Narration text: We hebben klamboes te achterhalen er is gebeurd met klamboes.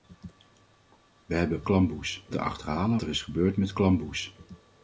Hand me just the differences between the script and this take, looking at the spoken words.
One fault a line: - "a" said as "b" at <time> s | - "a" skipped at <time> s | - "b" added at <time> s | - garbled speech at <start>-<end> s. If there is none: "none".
none